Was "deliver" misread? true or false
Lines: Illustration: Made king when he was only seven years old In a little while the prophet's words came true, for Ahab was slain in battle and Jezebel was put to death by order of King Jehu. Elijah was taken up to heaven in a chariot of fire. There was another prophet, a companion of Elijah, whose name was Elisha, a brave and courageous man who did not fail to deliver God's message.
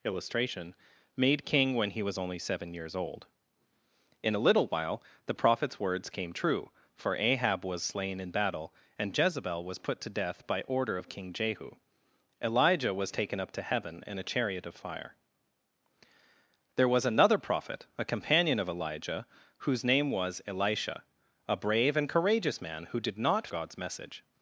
true